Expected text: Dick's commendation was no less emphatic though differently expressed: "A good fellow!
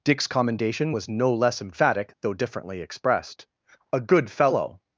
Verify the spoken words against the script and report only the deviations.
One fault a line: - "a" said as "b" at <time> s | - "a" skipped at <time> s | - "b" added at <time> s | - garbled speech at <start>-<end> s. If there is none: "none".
none